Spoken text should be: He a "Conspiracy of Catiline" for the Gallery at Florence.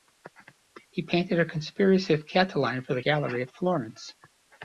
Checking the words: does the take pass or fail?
fail